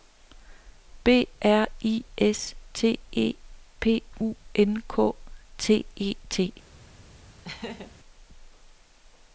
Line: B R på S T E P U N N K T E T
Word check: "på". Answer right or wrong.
wrong